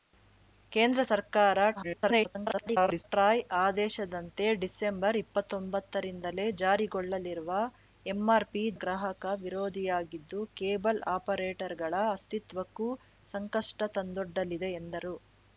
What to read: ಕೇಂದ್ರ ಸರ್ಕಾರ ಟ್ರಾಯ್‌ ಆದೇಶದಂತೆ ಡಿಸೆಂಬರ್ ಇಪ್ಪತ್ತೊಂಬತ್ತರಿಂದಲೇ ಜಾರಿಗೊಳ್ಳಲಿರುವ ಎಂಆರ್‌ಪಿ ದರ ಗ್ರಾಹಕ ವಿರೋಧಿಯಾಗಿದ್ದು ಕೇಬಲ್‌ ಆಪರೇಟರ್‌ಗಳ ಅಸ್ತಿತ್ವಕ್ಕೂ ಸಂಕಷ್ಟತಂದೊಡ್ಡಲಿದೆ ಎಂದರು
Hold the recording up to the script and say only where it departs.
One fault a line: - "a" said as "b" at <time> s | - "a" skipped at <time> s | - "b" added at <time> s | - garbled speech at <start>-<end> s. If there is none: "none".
- garbled speech at 1.8-3.0 s
- "ದರ" skipped at 8.6 s